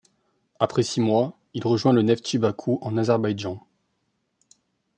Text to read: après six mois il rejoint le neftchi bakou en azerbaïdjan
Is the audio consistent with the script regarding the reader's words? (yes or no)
yes